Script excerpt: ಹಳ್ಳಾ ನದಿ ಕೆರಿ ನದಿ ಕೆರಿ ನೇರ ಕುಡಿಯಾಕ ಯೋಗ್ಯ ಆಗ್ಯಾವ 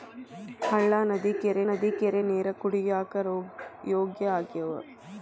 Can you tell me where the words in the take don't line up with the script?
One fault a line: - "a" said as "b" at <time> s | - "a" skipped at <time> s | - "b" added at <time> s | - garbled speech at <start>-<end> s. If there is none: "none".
none